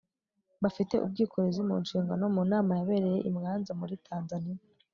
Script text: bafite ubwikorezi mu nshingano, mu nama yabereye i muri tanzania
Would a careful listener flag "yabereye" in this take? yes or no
no